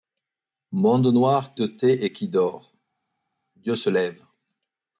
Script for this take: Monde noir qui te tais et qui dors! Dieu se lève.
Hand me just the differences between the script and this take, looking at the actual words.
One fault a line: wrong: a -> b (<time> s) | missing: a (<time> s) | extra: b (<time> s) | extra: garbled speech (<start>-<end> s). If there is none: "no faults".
missing: qui (1.6 s)